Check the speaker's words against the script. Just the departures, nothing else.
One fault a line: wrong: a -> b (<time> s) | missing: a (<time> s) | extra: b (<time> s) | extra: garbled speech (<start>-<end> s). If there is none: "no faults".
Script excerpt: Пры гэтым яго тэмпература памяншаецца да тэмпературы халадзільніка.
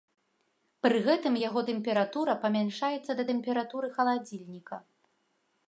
no faults